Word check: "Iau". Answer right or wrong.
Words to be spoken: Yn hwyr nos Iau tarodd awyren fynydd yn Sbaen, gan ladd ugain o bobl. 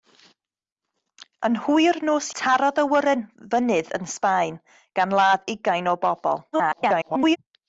wrong